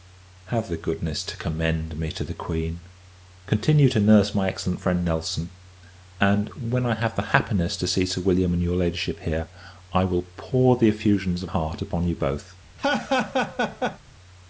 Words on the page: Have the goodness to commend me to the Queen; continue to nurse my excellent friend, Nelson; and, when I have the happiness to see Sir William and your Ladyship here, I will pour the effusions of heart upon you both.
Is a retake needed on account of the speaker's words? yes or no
no